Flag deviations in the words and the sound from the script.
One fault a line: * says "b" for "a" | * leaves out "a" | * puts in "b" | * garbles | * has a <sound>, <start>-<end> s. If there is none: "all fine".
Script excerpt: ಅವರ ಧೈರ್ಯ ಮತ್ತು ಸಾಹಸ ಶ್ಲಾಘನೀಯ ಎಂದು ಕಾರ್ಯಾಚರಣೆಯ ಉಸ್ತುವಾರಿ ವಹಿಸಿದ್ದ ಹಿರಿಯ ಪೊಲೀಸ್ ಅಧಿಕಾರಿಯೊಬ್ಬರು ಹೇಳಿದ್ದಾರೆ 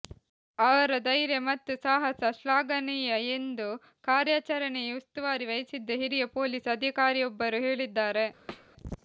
* has a thud, 8.5-8.7 s